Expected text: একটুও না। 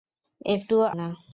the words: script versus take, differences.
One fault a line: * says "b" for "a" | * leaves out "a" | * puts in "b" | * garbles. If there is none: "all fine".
all fine